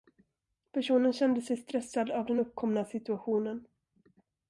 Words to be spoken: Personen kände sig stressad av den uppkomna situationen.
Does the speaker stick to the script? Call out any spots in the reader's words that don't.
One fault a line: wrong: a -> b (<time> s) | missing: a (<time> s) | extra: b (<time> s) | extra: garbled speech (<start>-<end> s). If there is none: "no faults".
no faults